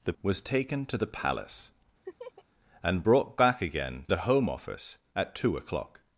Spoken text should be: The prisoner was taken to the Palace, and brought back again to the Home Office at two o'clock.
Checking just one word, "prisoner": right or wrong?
wrong